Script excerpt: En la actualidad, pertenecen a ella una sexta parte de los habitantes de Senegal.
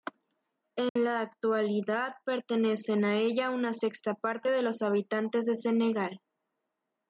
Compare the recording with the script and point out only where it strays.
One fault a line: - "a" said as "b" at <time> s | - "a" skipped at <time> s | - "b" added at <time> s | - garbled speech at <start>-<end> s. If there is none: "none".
none